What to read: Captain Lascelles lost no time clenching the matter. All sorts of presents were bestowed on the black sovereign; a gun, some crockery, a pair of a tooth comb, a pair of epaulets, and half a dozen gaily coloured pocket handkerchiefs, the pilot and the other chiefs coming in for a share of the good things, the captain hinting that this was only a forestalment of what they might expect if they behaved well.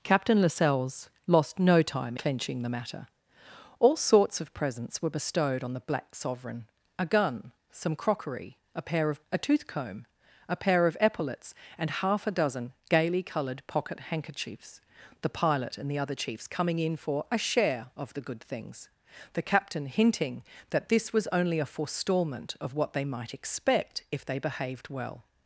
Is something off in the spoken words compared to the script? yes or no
no